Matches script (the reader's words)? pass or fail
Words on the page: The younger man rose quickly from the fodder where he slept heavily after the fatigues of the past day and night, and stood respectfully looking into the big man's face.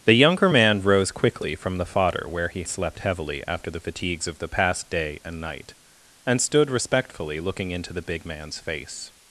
pass